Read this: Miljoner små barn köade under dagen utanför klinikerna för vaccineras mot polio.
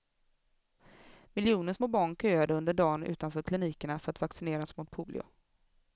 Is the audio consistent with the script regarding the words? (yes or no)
no